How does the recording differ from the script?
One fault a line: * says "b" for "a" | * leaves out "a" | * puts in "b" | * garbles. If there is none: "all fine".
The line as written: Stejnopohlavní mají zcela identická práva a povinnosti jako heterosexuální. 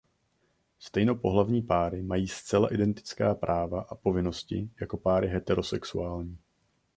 * puts in "páry"
* puts in "páry"